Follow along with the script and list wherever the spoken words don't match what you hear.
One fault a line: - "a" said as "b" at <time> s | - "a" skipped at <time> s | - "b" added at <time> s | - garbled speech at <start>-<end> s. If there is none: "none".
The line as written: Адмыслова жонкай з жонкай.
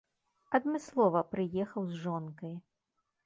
- "жонкай" said as "прыехаў" at 1.4 s